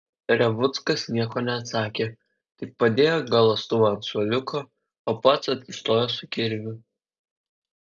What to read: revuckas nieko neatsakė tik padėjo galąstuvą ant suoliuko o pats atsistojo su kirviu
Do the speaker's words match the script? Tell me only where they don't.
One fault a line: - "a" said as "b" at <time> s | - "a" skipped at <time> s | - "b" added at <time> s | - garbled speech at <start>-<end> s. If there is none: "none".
none